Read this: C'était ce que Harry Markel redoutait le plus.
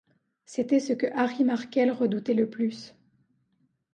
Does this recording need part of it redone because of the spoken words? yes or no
no